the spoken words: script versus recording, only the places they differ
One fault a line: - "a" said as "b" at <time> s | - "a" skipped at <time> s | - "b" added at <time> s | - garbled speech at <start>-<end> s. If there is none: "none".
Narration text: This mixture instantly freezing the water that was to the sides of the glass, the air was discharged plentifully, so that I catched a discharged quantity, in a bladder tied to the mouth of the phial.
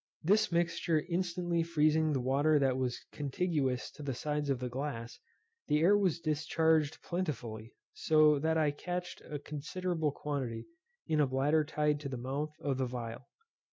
- "contiguous" added at 3.1 s
- "discharged" said as "considerable" at 9.4 s